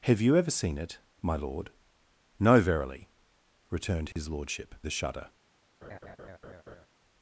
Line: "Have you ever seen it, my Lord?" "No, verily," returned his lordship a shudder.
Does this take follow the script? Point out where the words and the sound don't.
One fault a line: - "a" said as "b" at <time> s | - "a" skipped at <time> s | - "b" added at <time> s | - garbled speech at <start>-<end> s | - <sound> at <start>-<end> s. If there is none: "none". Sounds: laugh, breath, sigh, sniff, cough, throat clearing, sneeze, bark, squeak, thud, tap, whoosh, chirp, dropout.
- dropout at 4.1-4.2 s
- laugh at 5.8-6.9 s